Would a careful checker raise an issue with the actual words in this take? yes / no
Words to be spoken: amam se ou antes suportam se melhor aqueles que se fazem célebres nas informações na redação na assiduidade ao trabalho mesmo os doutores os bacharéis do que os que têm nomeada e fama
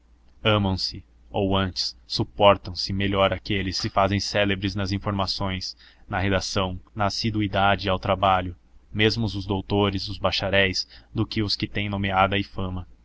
no